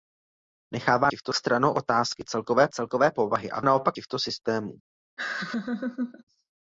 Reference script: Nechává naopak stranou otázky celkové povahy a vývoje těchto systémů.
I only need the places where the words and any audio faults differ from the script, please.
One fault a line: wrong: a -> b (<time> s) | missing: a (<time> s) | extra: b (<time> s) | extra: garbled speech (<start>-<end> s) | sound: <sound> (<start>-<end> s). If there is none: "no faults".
wrong: naopak -> těchto (1.1 s)
extra: celkové (2.7 s)
wrong: vývoje -> naopak (3.6 s)
sound: laugh (5.2-6.2 s)